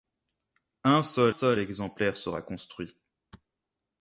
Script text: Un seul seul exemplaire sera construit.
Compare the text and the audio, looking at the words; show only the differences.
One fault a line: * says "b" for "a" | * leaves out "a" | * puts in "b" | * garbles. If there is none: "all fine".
all fine